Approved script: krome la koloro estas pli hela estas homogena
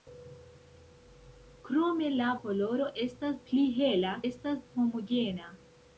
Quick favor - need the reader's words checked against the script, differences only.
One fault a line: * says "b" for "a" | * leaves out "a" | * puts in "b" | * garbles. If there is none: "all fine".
all fine